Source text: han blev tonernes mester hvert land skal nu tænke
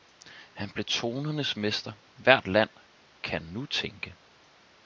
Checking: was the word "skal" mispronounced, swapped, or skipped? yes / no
yes